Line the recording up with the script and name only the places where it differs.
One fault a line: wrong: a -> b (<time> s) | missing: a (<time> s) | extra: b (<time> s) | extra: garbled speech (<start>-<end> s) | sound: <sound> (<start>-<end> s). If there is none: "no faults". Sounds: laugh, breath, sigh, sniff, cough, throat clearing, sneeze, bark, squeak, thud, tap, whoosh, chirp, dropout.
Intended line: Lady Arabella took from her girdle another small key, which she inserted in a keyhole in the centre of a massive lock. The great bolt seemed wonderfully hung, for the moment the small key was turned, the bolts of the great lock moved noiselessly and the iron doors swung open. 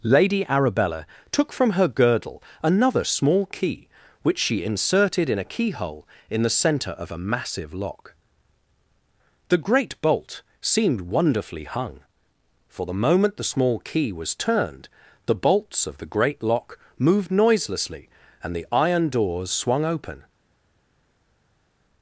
no faults